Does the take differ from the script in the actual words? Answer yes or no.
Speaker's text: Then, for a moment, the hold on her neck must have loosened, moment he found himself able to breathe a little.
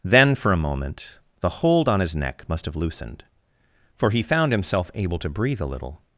yes